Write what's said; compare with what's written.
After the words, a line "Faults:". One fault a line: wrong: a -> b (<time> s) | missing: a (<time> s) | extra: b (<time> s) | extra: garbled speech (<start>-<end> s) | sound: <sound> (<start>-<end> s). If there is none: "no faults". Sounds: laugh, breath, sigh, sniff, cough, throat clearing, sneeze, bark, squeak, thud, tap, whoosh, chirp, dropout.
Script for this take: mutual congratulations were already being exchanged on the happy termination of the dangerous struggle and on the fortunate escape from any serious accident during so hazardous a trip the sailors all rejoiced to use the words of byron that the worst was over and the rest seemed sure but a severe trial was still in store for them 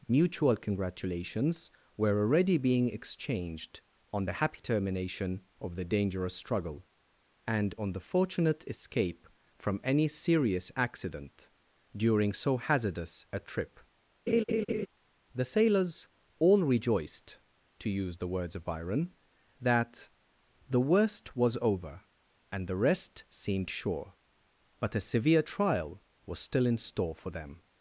mutual congratulations were already being exchanged on the happy termination of the dangerous struggle and on the fortunate escape from any serious accident during so hazardous a trip the sailors all rejoiced to use the words of byron that the worst was over and the rest seemed sure but a severe trial was still in store for them
Faults:
sound: laugh (14.3-14.9 s)